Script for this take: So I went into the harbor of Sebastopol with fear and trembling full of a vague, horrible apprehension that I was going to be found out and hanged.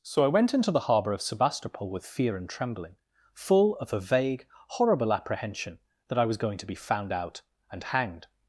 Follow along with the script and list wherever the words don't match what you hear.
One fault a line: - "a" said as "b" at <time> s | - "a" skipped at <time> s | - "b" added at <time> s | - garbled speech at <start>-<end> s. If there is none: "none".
none